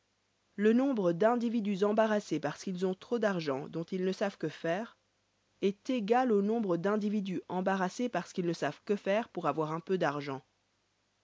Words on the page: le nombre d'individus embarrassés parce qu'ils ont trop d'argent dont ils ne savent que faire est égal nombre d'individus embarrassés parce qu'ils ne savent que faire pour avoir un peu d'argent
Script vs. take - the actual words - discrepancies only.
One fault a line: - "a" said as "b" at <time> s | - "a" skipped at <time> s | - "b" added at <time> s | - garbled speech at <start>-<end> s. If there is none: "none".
- "au" added at 6.3 s